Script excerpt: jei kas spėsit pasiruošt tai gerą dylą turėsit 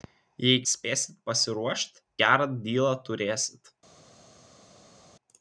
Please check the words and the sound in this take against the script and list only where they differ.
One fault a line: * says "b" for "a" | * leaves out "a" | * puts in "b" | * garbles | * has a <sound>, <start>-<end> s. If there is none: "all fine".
* leaves out "kas"
* leaves out "tai"